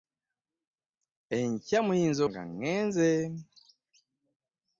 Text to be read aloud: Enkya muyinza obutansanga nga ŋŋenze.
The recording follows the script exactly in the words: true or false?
false